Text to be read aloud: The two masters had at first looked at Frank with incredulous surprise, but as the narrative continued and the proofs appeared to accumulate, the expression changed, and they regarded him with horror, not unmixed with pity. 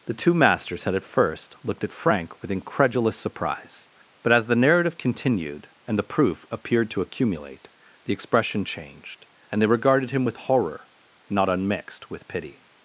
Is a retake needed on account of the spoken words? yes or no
yes